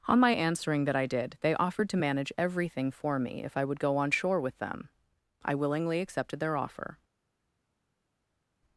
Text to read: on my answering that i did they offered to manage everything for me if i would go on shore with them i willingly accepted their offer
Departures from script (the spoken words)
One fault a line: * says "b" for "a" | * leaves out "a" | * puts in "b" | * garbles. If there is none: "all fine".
all fine